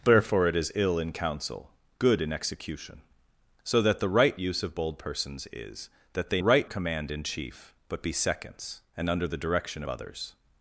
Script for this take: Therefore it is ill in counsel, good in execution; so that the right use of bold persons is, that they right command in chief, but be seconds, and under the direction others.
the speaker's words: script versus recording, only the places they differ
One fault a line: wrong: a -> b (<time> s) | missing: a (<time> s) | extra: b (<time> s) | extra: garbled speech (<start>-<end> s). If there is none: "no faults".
no faults